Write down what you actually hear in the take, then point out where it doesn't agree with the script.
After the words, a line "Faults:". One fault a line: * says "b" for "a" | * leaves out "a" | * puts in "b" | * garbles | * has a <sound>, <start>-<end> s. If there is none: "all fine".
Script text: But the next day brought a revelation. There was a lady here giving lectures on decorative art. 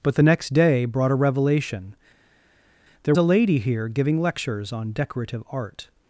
But the next day brought a revelation. There a lady here giving lectures on decorative art.
Faults:
* leaves out "was"